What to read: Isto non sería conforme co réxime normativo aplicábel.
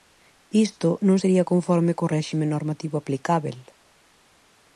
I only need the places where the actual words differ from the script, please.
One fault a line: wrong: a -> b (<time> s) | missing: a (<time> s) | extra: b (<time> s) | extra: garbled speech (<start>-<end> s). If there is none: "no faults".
no faults